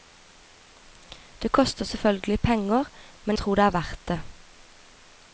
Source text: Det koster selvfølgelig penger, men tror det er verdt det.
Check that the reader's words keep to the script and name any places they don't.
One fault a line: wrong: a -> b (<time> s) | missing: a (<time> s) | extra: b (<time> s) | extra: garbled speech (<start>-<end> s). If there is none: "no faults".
no faults